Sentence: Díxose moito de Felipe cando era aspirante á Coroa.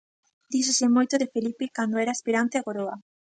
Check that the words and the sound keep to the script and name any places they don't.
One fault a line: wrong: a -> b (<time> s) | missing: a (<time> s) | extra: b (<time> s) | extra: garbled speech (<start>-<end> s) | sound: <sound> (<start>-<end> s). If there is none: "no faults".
no faults